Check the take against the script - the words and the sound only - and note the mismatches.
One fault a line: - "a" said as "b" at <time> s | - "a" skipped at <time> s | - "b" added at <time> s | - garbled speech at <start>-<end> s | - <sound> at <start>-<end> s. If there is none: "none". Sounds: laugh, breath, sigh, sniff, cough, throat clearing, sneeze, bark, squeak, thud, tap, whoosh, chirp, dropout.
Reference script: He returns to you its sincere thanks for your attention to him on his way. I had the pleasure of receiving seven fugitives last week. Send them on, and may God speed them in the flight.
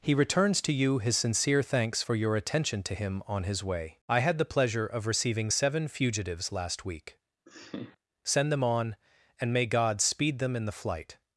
- "its" said as "his" at 1.0 s
- laugh at 7.5-8.0 s